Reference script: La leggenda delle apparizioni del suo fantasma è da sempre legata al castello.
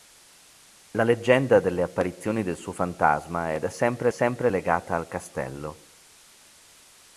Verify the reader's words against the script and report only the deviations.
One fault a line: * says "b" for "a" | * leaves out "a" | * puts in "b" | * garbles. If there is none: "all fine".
* puts in "sempre"